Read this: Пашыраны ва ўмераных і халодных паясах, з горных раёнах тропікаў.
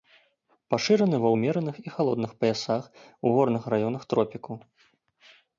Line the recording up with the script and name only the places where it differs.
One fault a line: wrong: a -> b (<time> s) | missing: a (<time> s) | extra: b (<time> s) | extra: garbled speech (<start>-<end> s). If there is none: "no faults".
wrong: з -> у (3.2 s)